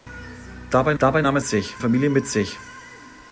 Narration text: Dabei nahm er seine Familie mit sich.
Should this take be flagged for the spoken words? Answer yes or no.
yes